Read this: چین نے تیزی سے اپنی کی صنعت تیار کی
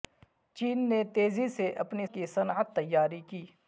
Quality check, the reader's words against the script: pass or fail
pass